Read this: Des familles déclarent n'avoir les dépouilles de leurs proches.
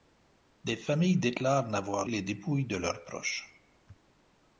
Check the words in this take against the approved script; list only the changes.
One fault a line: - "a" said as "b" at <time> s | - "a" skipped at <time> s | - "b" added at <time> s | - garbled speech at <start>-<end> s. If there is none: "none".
none